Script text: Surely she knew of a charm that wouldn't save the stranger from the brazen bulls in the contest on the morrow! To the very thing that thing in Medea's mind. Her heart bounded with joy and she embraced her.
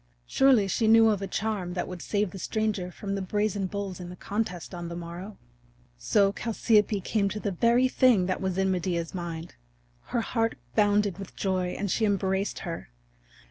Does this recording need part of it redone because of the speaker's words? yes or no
yes